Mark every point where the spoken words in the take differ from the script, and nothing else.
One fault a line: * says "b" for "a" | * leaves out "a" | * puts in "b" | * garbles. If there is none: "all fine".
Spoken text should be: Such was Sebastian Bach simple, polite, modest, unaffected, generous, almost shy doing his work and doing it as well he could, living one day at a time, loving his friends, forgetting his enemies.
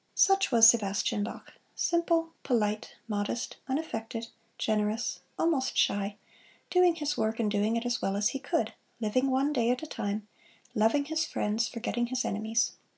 * puts in "as"